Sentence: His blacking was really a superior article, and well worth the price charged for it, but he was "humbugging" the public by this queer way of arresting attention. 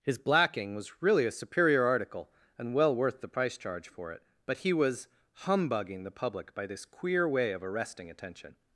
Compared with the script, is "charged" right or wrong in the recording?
wrong